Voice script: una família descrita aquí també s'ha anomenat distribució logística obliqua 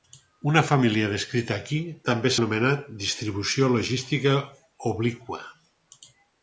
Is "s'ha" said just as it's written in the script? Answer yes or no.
no